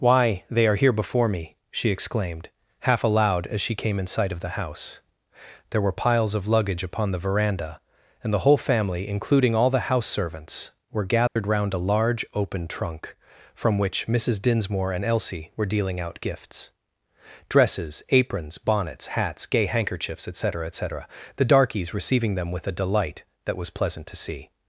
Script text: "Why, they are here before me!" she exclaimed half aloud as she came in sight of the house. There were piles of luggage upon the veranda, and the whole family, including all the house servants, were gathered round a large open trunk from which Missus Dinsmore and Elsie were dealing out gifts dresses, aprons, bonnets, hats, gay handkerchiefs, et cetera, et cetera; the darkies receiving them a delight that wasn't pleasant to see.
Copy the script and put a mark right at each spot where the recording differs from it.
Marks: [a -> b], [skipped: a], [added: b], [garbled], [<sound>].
"Why, they are here before me!" she exclaimed half aloud as she came in sight of the house. There were piles of luggage upon the veranda, and the whole family, including all the house servants, were gathered [dropout] round a large open trunk from which Missus Dinsmore and Elsie were dealing out gifts dresses, aprons, bonnets, hats, gay handkerchiefs, et cetera, et cetera; the darkies receiving them [added: with] a delight that [wasn't -> was] pleasant to see.